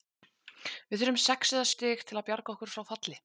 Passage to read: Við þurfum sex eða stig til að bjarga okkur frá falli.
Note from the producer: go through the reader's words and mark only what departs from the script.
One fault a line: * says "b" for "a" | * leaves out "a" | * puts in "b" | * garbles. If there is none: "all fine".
all fine